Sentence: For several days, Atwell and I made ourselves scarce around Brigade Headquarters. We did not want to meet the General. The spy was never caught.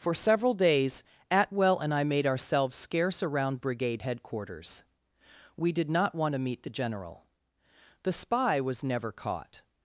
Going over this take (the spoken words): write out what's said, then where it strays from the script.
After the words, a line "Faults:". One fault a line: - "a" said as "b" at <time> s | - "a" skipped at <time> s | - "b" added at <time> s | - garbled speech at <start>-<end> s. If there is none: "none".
For several days, Atwell and I made ourselves scarce around Brigade Headquarters. We did not want to meet the General. The spy was never caught.
Faults:
none